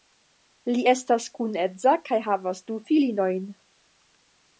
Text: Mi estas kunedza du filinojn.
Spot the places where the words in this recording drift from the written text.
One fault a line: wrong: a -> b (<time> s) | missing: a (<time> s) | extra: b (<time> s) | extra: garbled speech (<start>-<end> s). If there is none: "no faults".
wrong: Mi -> Li (0.7 s)
extra: kaj havas (2.1 s)